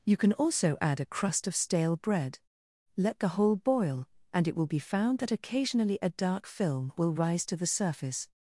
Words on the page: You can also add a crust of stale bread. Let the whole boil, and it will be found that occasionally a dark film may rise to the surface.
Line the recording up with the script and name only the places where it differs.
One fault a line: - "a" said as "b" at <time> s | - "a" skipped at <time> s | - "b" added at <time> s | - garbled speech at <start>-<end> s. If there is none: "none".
- "may" said as "will" at 7.0 s